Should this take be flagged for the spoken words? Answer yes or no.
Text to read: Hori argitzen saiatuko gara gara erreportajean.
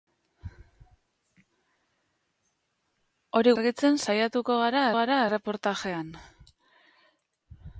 no